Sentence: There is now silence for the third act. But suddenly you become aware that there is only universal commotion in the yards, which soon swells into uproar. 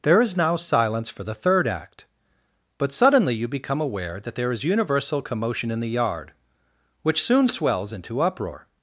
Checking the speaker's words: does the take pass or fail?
fail